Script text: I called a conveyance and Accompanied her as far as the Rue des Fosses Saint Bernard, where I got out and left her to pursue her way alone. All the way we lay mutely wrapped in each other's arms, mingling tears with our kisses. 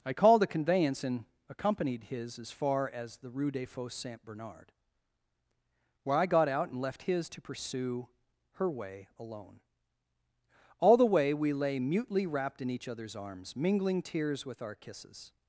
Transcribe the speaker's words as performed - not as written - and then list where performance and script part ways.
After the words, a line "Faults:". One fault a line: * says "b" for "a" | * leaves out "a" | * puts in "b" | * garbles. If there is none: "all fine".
I called a conveyance and Accompanied his as far as the Rue des Fosses Saint Bernard, where I got out and left his to pursue her way alone. All the way we lay mutely wrapped in each other's arms, mingling tears with our kisses.
Faults:
* says "his" for "her"
* says "his" for "her"